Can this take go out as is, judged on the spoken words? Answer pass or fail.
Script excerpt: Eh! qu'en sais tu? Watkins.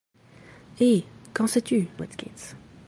pass